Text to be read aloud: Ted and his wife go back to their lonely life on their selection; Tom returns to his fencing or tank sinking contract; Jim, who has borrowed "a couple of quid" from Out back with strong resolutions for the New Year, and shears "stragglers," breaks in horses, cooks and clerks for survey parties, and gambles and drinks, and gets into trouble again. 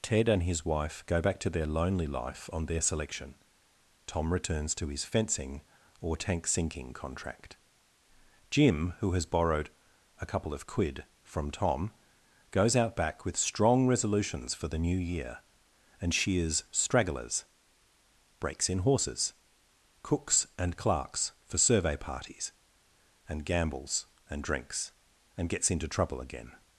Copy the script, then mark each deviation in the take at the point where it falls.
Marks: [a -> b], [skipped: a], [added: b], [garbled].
Ted and his wife go back to their lonely life on their selection; Tom returns to his fencing or tank sinking contract; Jim, who has borrowed "a couple of quid" from [added: Tom goes] Out back with strong resolutions for the New Year, and shears "stragglers," breaks in horses, cooks and clerks for survey parties, and gambles and drinks, and gets into trouble again.